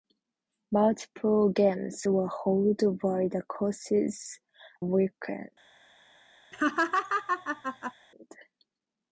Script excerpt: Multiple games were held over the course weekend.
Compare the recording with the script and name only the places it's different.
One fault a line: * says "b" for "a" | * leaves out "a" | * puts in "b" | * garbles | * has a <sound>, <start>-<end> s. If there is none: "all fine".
* has a laugh, 6.5-7.9 s